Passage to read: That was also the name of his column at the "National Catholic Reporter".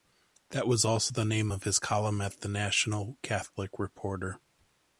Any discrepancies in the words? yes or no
no